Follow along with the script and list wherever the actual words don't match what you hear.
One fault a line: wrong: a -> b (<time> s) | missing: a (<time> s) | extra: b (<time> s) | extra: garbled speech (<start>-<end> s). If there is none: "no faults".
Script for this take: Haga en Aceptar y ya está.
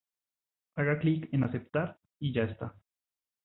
extra: clic (1.0 s)